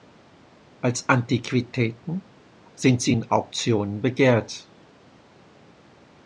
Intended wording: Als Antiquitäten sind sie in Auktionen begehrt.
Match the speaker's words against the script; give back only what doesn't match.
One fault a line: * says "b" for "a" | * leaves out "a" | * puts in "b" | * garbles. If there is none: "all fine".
all fine